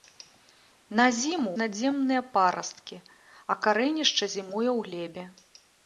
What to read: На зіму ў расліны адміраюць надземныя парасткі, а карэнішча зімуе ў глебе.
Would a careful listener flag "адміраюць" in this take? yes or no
yes